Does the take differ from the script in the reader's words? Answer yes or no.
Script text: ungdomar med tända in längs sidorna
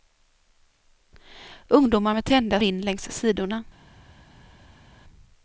no